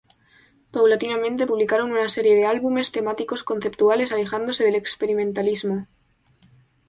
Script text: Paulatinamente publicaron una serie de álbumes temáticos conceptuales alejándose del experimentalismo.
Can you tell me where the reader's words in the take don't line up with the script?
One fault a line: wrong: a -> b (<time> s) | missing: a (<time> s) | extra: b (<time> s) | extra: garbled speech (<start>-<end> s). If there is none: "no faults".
no faults